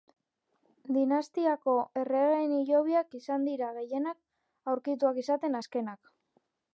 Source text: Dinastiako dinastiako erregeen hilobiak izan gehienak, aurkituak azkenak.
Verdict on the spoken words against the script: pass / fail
fail